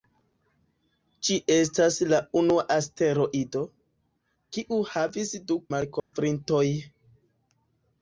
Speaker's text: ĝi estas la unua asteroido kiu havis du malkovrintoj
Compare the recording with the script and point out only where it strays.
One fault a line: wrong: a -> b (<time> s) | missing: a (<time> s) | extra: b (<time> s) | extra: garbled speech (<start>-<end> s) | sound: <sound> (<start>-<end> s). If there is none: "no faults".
sound: dropout (6.0-6.1 s)